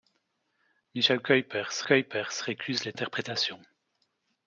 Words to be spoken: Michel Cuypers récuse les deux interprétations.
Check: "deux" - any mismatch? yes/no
yes